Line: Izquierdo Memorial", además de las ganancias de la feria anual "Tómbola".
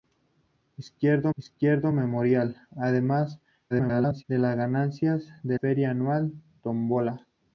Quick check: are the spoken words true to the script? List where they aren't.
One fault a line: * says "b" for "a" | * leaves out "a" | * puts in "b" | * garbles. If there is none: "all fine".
* puts in "izquierdo"
* garbles
* leaves out "la"